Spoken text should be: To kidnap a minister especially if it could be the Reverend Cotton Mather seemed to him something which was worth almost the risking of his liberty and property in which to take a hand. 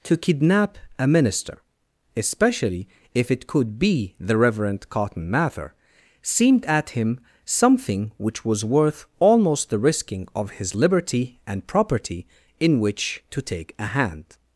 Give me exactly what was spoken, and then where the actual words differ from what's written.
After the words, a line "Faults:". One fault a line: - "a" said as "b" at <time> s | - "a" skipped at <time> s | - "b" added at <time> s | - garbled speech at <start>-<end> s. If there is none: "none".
To kidnap a minister especially if it could be the Reverend Cotton Mather seemed at him something which was worth almost the risking of his liberty and property in which to take a hand.
Faults:
- "to" said as "at" at 6.7 s